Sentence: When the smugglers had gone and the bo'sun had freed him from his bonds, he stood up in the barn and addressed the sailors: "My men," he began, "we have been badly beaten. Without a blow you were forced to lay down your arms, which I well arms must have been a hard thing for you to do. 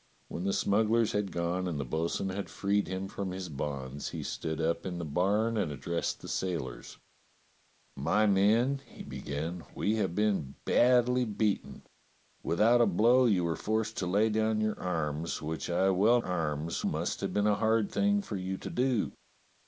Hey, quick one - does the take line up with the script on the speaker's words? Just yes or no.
yes